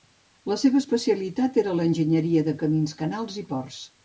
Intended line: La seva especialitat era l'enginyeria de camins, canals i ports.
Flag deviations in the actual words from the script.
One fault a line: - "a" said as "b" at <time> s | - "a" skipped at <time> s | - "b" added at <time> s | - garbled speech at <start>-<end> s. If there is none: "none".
none